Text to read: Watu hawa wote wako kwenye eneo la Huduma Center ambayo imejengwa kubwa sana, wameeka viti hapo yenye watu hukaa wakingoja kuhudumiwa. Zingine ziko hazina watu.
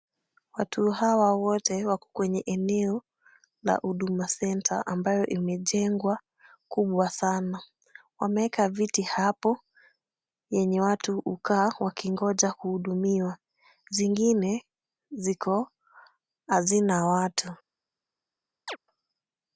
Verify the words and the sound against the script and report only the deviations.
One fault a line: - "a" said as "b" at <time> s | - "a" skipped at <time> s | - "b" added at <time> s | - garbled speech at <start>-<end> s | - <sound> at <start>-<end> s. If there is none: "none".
- chirp at 18.7-18.8 s